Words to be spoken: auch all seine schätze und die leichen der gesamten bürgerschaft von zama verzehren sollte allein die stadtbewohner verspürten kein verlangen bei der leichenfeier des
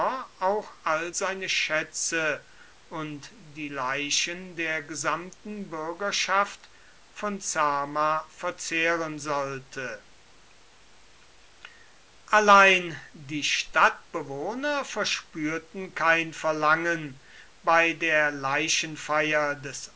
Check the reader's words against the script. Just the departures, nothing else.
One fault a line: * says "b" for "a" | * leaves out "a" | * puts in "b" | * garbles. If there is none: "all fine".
all fine